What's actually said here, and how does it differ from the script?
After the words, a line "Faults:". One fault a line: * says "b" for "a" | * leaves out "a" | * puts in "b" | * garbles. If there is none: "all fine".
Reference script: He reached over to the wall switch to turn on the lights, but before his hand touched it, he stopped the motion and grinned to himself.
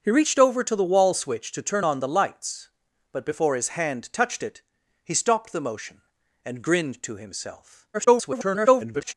He reached over to the wall switch to turn on the lights, but before his hand touched it, he stopped the motion and grinned to himself. [garbled]
Faults:
* garbles